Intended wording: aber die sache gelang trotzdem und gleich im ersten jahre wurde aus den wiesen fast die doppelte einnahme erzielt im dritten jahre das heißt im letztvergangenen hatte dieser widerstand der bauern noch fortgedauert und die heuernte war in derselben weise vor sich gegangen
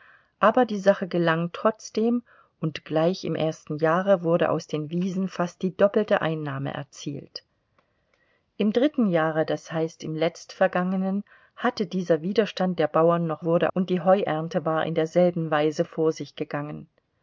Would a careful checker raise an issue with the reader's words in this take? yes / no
yes